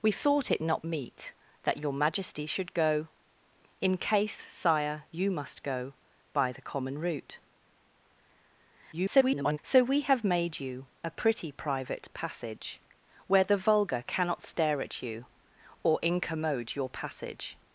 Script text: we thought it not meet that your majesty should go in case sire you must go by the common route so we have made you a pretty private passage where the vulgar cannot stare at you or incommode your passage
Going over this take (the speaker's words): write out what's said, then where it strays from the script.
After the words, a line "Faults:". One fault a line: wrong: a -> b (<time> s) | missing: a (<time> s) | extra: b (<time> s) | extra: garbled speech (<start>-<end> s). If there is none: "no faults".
we thought it not meet that your majesty should go in case sire you must go by the common route [garbled] so we have made you a pretty private passage where the vulgar cannot stare at you or incommode your passage
Faults:
extra: garbled speech (8.9-9.6 s)